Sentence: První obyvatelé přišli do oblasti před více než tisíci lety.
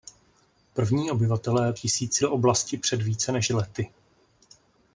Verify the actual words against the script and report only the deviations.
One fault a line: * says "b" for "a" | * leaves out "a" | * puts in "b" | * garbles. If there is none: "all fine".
* says "tisíci" for "přišli"
* leaves out "tisíci"